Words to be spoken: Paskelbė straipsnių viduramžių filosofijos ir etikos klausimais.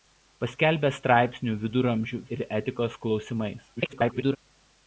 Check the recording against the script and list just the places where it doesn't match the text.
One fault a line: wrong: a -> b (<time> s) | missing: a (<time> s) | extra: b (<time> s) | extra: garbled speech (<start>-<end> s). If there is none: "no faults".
missing: filosofijos (2.2 s)
extra: garbled speech (3.8-4.4 s)